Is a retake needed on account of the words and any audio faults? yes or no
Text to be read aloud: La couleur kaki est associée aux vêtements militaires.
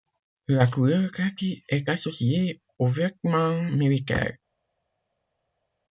no